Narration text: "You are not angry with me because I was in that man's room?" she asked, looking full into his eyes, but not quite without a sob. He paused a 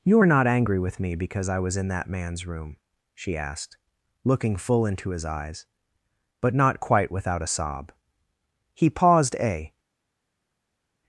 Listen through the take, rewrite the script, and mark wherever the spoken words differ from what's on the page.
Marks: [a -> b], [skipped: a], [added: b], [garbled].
"You are not angry with me because I was in that man's room?" she asked, looking full into his eyes, but not quite without a sob. He paused a